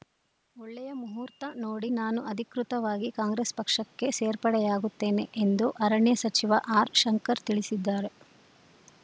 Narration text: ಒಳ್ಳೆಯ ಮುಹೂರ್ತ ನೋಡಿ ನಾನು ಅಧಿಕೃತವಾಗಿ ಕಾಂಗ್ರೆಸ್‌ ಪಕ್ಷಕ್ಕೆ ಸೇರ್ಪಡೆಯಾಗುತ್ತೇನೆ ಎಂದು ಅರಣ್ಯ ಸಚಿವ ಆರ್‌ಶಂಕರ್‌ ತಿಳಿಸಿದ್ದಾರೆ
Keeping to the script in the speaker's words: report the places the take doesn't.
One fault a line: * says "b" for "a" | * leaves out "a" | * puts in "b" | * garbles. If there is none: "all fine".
all fine